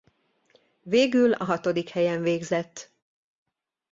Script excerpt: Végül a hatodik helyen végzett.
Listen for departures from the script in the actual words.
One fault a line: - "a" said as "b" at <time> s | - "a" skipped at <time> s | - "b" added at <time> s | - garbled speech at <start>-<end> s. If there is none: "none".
none